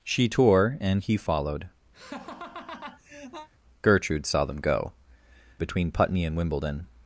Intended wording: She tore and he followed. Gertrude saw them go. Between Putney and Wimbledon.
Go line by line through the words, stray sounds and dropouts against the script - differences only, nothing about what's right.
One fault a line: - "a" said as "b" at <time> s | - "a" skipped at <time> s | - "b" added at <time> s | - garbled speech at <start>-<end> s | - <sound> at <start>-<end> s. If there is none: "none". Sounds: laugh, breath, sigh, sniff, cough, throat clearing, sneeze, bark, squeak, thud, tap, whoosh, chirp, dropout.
- laugh at 1.9-3.5 s